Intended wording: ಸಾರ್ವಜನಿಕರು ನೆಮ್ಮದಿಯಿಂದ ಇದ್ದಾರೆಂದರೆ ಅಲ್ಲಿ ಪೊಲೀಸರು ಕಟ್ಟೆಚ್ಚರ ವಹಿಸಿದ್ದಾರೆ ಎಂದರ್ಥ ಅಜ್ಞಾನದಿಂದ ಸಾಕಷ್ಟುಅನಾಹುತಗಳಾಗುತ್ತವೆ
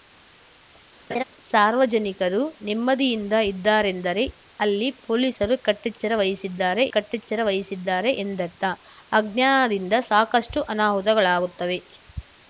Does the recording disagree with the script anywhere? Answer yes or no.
yes